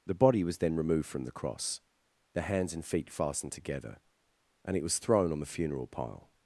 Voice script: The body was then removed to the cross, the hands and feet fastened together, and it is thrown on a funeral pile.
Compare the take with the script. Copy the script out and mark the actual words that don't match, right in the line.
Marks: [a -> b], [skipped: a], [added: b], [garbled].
The body was then removed [to -> from] the cross, the hands and feet fastened together, and it [is -> was] thrown on [a -> the] funeral pile.